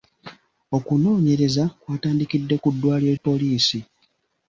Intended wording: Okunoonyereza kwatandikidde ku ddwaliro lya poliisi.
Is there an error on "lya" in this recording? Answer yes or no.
yes